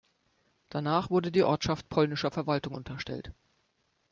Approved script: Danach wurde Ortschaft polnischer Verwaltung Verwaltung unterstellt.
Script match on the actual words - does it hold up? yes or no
no